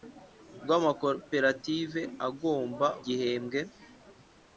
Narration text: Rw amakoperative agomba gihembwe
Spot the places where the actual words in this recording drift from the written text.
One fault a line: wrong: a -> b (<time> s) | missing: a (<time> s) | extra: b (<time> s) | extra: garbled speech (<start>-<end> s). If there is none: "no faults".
no faults